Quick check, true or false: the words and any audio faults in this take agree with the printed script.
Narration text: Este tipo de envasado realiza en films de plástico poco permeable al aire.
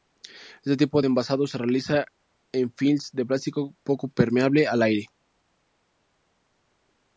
false